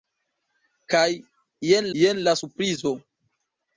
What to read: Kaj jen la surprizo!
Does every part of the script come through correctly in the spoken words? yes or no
no